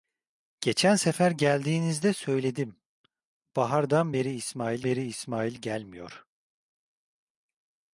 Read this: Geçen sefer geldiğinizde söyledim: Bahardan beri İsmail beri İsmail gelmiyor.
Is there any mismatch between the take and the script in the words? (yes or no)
no